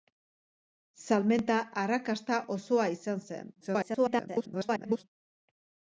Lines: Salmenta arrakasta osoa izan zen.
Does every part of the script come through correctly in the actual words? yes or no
no